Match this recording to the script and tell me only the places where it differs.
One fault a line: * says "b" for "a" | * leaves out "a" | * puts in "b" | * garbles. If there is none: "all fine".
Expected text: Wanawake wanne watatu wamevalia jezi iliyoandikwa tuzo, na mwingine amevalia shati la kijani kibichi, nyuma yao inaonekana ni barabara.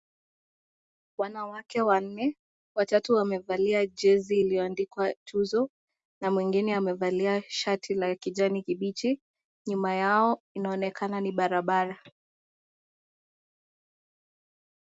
all fine